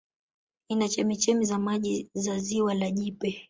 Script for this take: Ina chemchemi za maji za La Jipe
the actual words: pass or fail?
fail